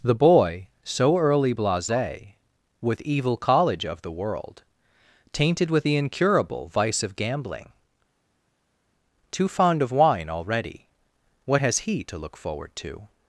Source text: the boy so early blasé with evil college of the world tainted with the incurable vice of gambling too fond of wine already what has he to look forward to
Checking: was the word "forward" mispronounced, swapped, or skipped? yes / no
no